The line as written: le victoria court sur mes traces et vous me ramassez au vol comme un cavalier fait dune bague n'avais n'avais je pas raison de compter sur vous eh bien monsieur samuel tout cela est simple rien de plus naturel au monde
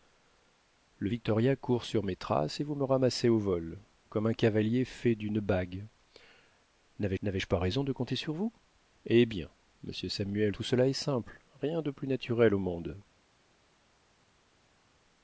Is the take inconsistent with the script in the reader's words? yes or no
no